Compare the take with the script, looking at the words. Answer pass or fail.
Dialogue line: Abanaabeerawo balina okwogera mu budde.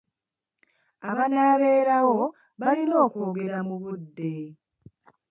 pass